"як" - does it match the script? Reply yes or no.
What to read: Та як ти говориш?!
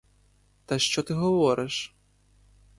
no